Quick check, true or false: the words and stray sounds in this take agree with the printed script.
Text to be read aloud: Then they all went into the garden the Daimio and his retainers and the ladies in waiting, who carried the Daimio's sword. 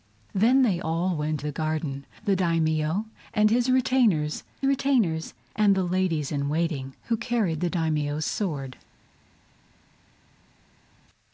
false